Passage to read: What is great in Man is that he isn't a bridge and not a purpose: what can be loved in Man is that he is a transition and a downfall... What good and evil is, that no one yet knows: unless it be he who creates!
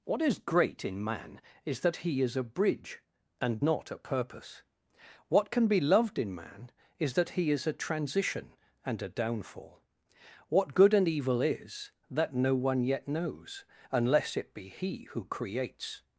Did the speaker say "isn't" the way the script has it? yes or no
no